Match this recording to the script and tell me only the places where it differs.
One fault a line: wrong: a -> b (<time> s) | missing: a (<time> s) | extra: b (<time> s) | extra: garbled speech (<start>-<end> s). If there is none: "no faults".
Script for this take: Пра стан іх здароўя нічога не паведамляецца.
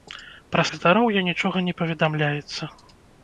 missing: стан (0.6 s)